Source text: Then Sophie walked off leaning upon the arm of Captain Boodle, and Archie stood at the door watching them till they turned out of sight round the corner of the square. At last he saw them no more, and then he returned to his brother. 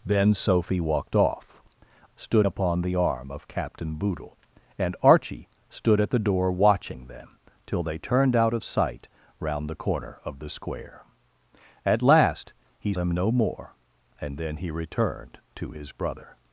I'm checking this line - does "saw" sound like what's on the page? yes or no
no